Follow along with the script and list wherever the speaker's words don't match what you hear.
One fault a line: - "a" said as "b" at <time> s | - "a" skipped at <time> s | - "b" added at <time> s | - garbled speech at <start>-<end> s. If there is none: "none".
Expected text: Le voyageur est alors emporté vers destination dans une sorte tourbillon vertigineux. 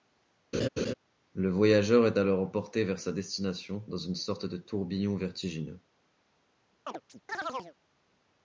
- "sa" added at 3.0 s
- "de" added at 4.5 s